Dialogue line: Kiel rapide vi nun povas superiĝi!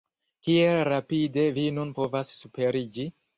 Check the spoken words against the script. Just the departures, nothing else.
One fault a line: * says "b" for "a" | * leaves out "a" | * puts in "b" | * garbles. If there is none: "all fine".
all fine